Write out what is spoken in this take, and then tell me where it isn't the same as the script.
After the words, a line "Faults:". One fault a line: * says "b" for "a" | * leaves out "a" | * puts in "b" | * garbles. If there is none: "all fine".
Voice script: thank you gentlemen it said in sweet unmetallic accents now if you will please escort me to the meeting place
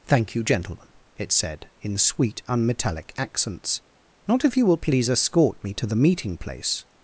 thank you gentlemen it said in sweet unmetallic accents not if you will please escort me to the meeting place
Faults:
* says "not" for "now"